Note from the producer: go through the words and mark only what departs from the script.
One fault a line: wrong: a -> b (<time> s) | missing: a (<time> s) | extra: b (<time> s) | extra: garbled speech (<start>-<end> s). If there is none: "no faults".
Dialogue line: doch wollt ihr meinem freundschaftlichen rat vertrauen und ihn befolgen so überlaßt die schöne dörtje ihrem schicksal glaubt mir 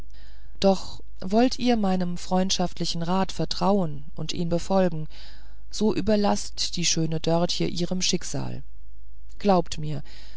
no faults